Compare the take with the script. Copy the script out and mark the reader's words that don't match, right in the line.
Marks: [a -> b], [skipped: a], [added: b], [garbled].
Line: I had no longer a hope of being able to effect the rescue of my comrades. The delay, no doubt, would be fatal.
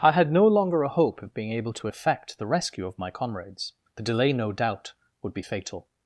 I had no longer a hope of being able to effect the rescue of my comrades. The delay, no doubt, would be fatal.